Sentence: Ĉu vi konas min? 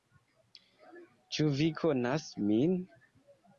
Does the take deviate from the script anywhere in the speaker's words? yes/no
no